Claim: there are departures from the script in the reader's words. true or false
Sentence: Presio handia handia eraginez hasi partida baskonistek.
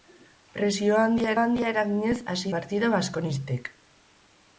false